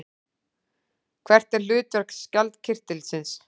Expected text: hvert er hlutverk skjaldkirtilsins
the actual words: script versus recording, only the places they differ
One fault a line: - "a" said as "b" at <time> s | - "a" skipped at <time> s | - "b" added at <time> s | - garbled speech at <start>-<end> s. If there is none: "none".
none